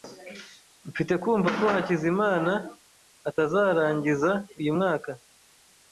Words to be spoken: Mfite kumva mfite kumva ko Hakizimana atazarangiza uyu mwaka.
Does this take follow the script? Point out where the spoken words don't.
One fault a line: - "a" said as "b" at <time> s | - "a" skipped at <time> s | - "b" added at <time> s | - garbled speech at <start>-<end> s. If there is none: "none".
- "mfite kumva" skipped at 1.5 s